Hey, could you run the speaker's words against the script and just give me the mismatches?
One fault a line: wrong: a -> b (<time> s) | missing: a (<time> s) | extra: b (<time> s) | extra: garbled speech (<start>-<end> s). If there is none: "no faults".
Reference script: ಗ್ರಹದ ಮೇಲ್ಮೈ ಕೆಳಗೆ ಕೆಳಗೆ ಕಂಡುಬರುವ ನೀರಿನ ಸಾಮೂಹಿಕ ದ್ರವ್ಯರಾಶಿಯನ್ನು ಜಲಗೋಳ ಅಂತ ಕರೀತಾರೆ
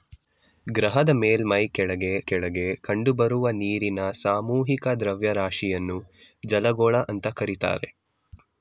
no faults